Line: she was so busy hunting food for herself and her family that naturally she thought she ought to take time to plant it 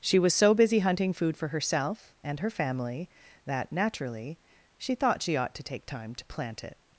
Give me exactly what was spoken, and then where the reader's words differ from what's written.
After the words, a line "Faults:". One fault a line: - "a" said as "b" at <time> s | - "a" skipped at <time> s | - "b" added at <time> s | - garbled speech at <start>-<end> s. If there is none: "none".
she was so busy hunting food for herself and her family that naturally she thought she ought to take time to plant it
Faults:
none